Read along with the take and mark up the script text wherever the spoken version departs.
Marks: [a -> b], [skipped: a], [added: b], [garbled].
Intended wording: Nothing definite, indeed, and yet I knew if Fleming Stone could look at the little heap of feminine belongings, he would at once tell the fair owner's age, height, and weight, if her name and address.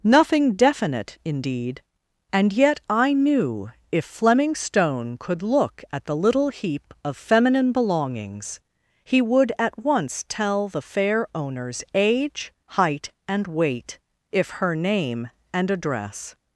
Nothing definite, indeed, and yet I knew if Fleming Stone could look at the little heap of feminine belongings, he would at once tell the fair owner's age, height, and weight, if her name and address.